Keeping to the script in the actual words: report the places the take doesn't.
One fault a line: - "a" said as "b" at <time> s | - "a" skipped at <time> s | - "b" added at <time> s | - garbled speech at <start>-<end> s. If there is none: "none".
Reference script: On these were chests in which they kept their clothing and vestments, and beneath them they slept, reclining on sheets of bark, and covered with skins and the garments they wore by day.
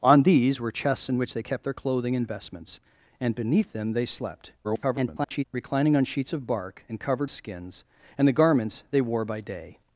- garbled speech at 4.6-5.4 s
- "with" skipped at 7.3 s